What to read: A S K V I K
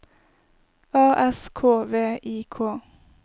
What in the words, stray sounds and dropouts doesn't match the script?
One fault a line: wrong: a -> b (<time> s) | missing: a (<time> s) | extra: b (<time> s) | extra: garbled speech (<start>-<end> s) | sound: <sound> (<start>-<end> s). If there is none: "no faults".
no faults